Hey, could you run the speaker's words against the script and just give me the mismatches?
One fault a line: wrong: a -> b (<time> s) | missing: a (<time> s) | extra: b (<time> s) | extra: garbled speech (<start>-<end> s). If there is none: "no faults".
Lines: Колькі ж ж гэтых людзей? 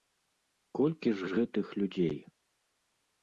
no faults